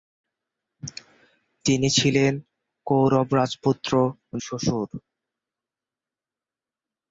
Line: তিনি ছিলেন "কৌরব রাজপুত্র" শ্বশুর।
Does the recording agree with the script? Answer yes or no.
yes